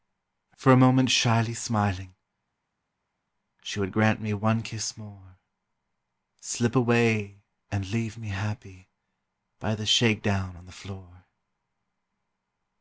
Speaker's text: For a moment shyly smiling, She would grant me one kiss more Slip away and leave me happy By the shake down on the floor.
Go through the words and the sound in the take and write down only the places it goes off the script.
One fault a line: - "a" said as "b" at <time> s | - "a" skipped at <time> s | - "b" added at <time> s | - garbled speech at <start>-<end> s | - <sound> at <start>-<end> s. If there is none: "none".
none